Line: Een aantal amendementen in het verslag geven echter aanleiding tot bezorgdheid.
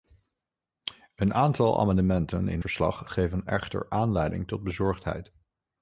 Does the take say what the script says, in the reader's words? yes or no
no